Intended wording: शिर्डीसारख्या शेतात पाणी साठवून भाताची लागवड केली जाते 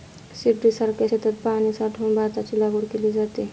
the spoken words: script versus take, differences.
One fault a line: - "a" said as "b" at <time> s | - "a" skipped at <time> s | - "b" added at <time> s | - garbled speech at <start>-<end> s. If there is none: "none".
none